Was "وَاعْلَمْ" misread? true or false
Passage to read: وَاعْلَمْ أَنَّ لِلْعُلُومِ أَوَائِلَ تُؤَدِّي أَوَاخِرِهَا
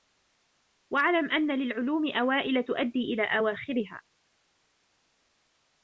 false